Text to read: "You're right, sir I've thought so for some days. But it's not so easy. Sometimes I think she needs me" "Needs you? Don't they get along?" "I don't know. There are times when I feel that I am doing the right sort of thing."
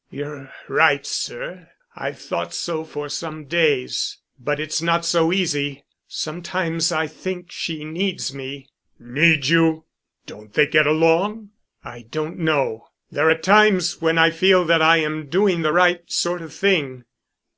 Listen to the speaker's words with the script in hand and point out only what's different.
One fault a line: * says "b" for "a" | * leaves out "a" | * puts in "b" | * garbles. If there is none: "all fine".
all fine